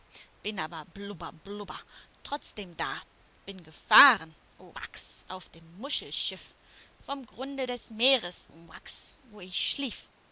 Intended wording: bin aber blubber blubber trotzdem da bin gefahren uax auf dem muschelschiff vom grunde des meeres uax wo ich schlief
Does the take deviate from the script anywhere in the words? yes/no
no